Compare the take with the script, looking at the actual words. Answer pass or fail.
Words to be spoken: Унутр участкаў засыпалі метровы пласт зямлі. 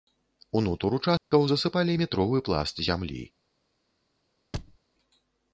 pass